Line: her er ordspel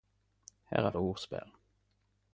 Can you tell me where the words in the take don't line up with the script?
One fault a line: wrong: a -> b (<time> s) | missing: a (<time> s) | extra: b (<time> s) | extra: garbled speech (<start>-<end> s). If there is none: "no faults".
no faults